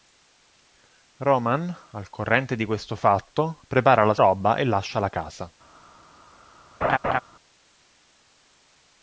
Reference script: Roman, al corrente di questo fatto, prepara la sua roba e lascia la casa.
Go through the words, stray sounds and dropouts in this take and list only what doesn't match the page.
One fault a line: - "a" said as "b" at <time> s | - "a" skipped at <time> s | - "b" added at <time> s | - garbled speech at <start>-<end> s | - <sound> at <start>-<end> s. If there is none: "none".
- "sua" skipped at 4.2 s
- laugh at 6.8-7.2 s